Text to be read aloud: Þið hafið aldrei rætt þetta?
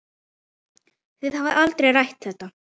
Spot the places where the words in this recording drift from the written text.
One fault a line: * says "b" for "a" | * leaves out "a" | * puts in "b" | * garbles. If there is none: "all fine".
all fine